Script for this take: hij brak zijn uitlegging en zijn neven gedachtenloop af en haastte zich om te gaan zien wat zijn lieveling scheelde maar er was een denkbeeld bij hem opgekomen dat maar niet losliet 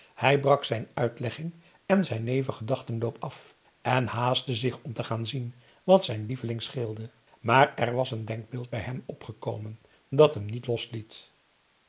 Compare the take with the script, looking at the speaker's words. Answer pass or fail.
fail